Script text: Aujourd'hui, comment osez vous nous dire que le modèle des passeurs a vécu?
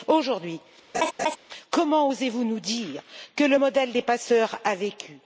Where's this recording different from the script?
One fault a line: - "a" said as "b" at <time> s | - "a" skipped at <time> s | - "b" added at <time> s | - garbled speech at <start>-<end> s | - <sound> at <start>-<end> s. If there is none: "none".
- laugh at 0.9-1.4 s